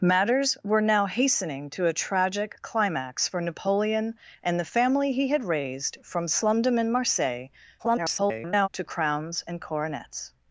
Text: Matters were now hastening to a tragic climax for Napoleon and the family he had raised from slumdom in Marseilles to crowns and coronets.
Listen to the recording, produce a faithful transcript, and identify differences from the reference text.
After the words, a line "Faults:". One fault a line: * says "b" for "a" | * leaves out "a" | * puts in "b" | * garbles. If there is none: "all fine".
Matters were now hastening to a tragic climax for Napoleon and the family he had raised from slumdom in Marseilles [garbled] to crowns and coronets.
Faults:
* garbles